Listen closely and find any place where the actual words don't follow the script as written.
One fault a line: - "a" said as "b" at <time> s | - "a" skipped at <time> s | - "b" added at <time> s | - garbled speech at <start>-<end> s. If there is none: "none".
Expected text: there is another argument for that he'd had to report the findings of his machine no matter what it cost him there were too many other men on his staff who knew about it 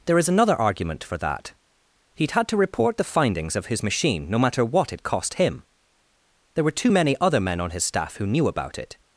none